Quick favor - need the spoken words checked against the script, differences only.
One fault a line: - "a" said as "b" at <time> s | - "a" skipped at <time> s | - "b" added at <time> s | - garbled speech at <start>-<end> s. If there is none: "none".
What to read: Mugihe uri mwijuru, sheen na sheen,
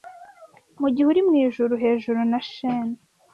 - "sheen" said as "hejuru" at 1.8 s